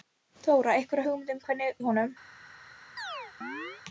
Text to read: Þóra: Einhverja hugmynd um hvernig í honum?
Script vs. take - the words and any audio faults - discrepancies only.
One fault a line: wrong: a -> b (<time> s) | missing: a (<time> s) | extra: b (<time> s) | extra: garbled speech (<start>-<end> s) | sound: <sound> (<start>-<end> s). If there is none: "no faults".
sound: chirp (3.0-3.8 s)